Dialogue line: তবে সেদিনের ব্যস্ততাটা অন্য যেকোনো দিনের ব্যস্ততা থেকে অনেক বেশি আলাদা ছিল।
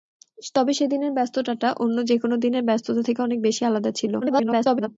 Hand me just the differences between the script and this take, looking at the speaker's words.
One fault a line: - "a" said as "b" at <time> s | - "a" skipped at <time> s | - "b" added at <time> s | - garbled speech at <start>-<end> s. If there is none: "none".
- garbled speech at 4.2-4.9 s